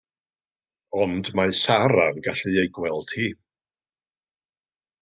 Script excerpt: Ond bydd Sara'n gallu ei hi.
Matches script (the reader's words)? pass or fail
fail